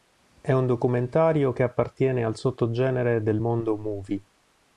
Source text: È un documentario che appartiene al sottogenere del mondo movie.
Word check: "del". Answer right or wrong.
right